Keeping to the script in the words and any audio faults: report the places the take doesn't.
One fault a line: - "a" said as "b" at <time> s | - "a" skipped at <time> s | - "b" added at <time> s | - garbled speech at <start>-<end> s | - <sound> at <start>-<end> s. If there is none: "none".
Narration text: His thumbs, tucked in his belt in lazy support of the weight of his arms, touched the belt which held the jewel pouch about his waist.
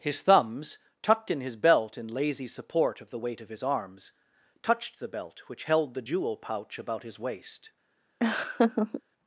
- laugh at 8.2-9.0 s